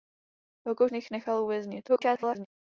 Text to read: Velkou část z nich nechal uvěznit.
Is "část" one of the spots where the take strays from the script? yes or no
yes